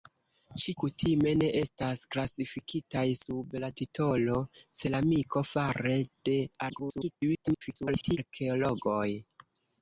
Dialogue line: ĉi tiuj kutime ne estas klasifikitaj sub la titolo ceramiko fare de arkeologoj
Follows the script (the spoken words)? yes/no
no